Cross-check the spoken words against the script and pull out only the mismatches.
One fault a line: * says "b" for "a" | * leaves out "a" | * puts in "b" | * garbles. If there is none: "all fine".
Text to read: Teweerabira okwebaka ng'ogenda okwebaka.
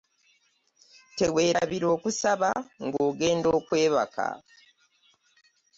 * says "okusaba" for "okwebaka"